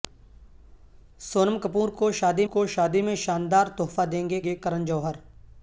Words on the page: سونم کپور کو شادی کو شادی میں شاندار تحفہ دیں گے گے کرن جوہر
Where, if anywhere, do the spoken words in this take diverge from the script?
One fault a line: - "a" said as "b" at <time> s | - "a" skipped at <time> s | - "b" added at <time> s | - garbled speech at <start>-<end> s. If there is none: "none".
none